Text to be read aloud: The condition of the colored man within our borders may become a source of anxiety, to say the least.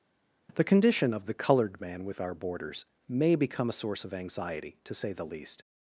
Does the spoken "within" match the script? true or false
false